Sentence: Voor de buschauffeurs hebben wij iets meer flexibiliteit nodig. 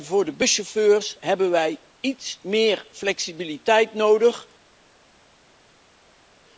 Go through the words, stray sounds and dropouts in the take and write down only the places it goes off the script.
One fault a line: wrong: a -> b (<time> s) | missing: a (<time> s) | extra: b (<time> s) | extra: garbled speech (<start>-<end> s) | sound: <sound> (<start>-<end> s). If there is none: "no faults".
no faults